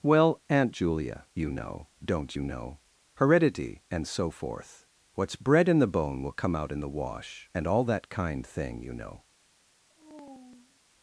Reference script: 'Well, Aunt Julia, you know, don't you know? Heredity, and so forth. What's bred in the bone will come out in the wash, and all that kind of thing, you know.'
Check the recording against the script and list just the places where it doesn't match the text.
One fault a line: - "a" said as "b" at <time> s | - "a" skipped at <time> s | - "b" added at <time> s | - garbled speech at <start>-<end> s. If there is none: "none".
- "of" skipped at 8.5 s